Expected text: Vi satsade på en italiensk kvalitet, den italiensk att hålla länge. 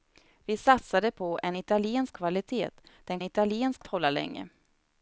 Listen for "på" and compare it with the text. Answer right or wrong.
right